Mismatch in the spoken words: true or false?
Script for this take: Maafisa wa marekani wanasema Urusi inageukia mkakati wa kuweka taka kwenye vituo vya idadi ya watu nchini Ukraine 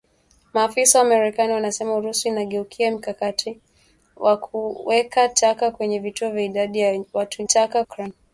true